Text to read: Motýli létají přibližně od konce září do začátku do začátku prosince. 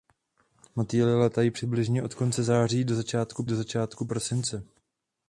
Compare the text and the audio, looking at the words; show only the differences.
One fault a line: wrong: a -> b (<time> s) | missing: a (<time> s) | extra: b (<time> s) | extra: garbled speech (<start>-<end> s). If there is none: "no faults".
no faults